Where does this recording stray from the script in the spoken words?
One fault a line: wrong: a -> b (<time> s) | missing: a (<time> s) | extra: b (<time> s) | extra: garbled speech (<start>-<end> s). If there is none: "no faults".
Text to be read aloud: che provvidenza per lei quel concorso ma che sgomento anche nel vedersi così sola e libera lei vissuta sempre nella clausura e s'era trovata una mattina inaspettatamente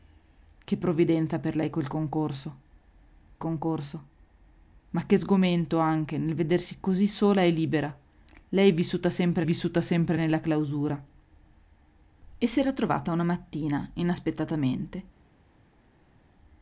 extra: concorso (3.4 s)
extra: vissuta sempre (9.4 s)